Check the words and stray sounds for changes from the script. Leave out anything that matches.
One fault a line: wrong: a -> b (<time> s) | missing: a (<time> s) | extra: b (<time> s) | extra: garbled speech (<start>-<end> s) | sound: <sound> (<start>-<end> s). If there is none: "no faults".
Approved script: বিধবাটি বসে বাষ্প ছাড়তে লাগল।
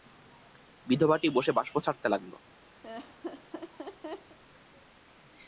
sound: laugh (2.8-4.4 s)